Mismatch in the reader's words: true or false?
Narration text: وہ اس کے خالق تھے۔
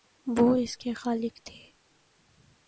false